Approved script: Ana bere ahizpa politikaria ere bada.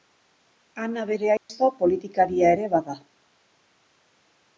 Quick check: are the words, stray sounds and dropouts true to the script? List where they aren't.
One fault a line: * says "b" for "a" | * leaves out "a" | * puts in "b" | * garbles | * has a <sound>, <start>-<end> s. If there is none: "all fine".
* has a dropout, 1.4-1.5 s